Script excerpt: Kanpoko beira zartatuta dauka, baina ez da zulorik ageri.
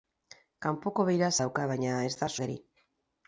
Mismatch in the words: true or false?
true